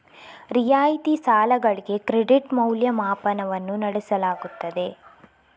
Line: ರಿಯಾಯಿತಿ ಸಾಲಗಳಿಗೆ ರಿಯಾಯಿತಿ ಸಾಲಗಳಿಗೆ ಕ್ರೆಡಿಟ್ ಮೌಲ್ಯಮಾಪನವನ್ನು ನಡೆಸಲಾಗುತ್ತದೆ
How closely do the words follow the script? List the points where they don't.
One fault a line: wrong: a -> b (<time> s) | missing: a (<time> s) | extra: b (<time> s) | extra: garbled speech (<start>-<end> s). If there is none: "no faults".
missing: ರಿಯಾಯಿತಿ ಸಾಲಗಳಿಗೆ (2.0 s)